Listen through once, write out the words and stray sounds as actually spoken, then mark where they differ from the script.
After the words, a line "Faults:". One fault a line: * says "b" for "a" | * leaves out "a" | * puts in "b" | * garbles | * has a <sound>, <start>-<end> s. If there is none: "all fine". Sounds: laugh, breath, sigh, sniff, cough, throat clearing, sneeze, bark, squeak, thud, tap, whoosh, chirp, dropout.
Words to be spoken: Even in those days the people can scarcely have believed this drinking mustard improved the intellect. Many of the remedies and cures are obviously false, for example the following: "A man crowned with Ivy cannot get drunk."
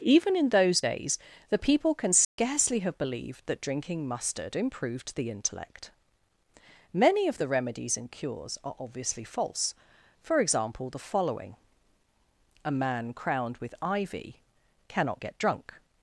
Even in those days the people can scarcely have believed that drinking mustard improved the intellect. Many of the remedies and cures are obviously false, for example the following: "A man crowned with Ivy cannot get drunk."
Faults:
* has a dropout, 2.2-2.4 s
* says "that" for "this"